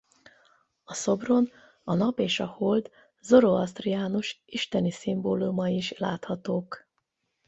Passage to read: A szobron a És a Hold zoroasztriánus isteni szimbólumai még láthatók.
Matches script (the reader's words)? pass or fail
fail